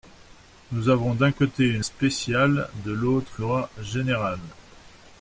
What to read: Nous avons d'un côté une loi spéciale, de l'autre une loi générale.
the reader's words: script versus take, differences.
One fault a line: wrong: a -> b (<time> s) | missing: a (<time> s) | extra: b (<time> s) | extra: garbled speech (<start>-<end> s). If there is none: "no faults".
missing: loi (1.8 s)
missing: une (3.4 s)